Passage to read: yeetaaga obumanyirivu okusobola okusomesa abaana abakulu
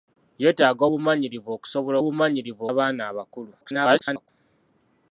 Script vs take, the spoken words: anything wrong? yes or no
yes